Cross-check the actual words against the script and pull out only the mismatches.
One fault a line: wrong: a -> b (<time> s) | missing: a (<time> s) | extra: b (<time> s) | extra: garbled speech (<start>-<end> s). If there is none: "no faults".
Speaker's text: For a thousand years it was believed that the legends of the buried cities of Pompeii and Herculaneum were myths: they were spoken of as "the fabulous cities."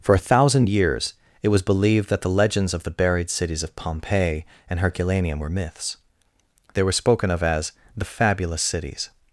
no faults